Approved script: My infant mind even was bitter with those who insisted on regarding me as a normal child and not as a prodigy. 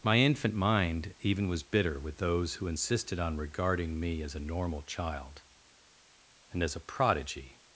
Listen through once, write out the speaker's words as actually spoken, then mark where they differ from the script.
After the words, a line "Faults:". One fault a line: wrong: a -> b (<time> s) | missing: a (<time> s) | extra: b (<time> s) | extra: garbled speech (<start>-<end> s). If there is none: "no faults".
My infant mind even was bitter with those who insisted on regarding me as a normal child and as a prodigy.
Faults:
missing: not (6.6 s)